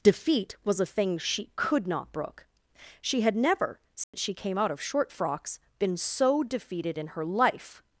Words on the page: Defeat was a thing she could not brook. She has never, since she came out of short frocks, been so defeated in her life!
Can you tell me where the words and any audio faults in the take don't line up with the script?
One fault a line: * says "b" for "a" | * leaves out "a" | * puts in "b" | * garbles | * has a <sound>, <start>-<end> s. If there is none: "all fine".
* says "had" for "has"
* has a dropout, 4.0-4.1 s